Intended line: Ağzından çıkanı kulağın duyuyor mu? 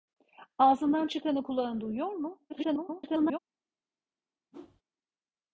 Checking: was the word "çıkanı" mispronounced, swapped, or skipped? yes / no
no